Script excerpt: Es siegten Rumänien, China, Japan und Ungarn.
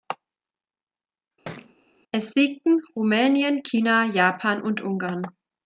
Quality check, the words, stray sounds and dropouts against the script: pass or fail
fail